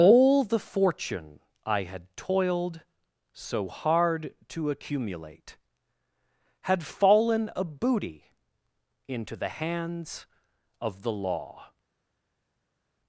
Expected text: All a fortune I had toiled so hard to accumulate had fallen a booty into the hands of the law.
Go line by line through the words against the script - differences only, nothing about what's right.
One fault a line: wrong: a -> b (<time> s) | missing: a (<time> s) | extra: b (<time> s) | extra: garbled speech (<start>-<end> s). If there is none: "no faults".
wrong: a -> the (0.4 s)